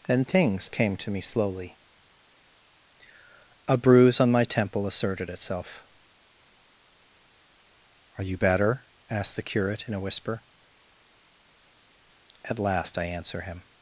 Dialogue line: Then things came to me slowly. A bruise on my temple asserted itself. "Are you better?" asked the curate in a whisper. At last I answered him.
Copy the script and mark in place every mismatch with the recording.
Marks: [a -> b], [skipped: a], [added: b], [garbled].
Then things came to me slowly. A bruise on my temple asserted itself. "Are you better?" asked the curate in a whisper. At last I [answered -> answer] him.